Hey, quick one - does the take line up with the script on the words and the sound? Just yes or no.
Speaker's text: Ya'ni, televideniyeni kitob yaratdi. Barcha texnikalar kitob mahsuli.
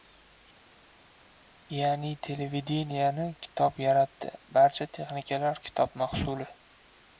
yes